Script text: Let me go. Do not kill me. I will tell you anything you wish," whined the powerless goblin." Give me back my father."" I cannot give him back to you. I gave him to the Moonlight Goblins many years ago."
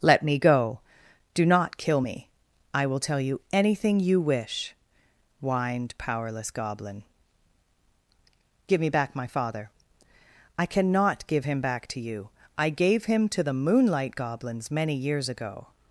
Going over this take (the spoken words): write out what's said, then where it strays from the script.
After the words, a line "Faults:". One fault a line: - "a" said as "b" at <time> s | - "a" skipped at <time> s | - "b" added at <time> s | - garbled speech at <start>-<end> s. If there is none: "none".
Let me go. Do not kill me. I will tell you anything you wish," whined powerless goblin." Give me back my father."" I cannot give him back to you. I gave him to the Moonlight Goblins many years ago."
Faults:
- "the" skipped at 5.9 s